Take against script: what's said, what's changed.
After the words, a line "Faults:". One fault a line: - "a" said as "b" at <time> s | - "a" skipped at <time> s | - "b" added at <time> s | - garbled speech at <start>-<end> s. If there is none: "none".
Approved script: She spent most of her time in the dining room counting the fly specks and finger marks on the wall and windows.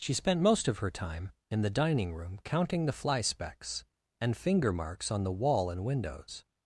She spent most of her time in the dining room counting the fly specks and finger marks on the wall and windows.
Faults:
none